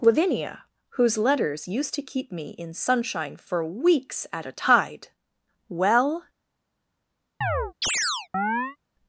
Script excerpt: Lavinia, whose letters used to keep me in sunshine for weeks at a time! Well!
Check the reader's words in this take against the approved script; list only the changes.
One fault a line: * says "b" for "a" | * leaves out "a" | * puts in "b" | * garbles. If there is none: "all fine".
* says "tide" for "time"